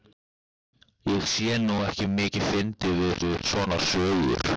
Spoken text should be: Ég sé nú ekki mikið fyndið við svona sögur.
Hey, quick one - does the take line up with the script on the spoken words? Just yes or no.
no